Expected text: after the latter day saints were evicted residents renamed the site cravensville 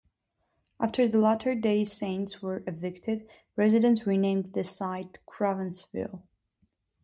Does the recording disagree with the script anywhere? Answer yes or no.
no